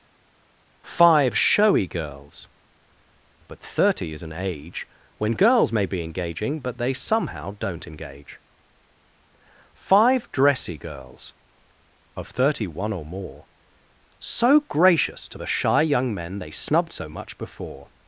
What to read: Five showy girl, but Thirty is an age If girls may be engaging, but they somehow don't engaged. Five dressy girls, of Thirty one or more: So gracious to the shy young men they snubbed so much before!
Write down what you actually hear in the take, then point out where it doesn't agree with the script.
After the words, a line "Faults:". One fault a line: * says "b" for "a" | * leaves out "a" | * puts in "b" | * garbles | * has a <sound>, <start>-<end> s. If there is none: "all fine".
Five showy girls, but Thirty is an age When girls may be engaging, but they somehow don't engage. Five dressy girls, of Thirty one or more: So gracious to the shy young men they snubbed so much before!
Faults:
* says "girls" for "girl"
* says "When" for "If"
* says "engage" for "engaged"